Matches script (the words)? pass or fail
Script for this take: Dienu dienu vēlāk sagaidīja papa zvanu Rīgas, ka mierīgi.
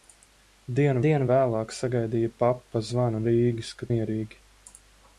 pass